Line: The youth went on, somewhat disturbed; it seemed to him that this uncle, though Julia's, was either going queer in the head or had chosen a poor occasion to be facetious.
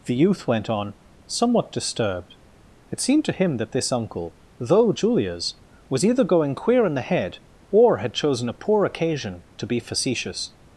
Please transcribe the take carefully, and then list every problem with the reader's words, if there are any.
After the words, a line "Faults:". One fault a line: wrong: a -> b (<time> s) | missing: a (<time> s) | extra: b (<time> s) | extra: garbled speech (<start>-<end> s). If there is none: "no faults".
The youth went on, somewhat disturbed; it seemed to him that this uncle, though Julia's, was either going queer in the head or had chosen a poor occasion to be facetious.
Faults:
no faults